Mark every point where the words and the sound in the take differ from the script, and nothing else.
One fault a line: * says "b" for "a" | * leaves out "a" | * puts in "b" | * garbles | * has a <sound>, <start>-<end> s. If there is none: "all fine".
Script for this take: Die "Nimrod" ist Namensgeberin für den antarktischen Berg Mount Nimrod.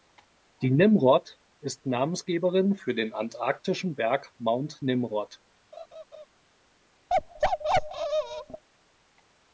* has a laugh, 5.7-6.3 s
* has a bark, 7.1-8.6 s